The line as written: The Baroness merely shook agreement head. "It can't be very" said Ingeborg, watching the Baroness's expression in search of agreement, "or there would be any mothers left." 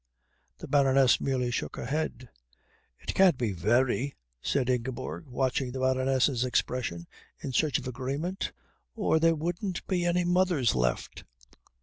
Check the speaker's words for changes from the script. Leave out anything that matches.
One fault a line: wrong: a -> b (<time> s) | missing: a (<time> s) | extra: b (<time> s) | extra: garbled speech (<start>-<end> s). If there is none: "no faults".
wrong: agreement -> her (1.8 s)
wrong: would -> wouldn't (9.3 s)